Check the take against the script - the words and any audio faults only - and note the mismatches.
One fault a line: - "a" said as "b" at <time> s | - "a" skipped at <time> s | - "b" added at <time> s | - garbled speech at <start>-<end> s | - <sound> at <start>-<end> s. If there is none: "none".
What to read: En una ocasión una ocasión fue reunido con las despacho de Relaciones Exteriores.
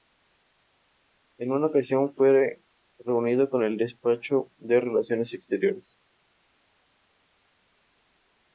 - "una ocasión" skipped at 2.1 s
- "las" said as "el" at 3.6 s